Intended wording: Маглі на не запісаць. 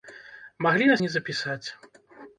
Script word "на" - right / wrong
right